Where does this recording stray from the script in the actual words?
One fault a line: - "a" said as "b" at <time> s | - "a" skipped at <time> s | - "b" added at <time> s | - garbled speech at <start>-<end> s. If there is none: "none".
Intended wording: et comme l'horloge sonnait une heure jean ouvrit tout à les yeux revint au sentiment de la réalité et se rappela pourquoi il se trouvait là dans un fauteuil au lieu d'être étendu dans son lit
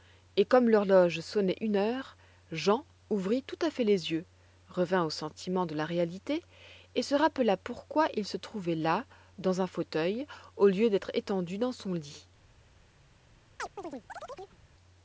- "fait" added at 3.7 s